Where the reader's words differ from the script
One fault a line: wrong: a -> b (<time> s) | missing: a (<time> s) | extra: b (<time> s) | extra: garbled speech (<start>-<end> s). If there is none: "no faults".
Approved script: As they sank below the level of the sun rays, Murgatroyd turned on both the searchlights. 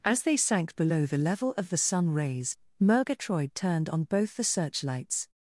no faults